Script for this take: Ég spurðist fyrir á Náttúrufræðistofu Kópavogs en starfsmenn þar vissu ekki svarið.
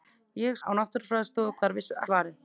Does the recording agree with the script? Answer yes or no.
no